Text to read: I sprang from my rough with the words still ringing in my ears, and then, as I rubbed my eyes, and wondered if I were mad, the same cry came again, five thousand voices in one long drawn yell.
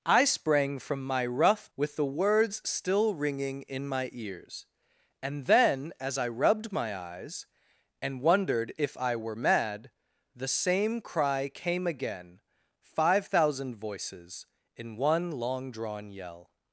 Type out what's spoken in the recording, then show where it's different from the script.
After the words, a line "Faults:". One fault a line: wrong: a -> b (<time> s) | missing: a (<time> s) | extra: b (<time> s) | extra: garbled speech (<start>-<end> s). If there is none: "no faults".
I sprang from my rough with the words still ringing in my ears, and then, as I rubbed my eyes, and wondered if I were mad, the same cry came again, five thousand voices in one long drawn yell.
Faults:
no faults